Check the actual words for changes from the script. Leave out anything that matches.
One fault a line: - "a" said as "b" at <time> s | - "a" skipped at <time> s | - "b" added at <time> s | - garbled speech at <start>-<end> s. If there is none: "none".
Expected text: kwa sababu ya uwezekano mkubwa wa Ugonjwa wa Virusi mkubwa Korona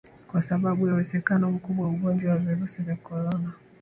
- "mkubwa" said as "vya" at 2.8 s